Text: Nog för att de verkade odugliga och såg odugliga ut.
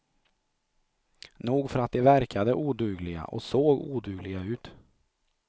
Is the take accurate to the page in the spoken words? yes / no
yes